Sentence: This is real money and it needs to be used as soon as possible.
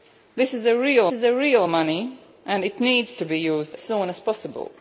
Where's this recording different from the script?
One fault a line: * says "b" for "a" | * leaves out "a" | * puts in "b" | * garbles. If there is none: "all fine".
* puts in "is real"
* leaves out "as"